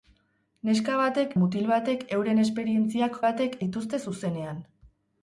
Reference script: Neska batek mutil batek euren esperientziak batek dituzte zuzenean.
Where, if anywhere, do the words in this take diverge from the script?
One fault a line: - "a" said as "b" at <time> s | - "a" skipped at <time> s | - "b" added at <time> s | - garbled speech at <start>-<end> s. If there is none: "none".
none